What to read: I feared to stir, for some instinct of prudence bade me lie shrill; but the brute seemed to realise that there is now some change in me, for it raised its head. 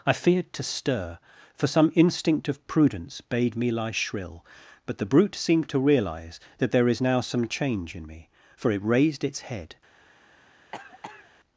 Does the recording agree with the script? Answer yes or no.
yes